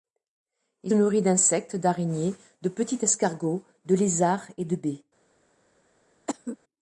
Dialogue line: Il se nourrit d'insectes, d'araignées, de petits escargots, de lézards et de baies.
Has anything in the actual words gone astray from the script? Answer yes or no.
yes